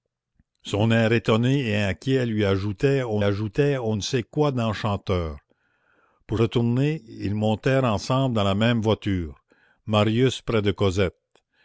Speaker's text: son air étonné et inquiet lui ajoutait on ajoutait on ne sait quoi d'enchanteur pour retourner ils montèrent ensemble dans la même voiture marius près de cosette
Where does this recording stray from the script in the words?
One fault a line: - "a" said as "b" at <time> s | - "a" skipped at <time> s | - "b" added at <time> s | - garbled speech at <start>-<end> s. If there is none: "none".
none